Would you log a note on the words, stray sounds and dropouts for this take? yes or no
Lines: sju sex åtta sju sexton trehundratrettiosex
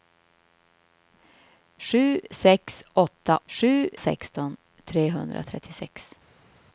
no